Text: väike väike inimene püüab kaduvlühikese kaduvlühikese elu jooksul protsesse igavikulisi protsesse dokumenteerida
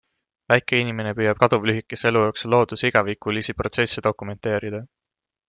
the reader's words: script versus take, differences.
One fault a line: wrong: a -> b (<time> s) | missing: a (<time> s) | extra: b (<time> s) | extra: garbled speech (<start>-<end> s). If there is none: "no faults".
missing: väike (0.8 s)
missing: kaduvlühikese (2.1 s)
wrong: protsesse -> looduse (2.6 s)